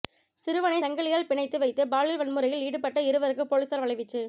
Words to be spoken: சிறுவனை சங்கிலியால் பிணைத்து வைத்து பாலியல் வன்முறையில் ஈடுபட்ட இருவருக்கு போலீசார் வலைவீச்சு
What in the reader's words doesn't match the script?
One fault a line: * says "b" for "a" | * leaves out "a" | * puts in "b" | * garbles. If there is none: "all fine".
all fine